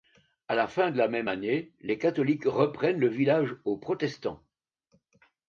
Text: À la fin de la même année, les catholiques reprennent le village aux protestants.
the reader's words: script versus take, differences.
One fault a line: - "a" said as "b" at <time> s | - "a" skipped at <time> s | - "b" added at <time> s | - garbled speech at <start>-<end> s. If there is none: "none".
none